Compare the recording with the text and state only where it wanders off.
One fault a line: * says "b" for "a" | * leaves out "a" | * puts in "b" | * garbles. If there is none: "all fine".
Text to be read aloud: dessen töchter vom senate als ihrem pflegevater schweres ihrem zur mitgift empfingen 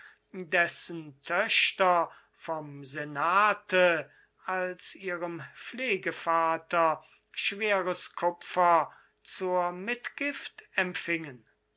* says "kupfer" for "ihrem"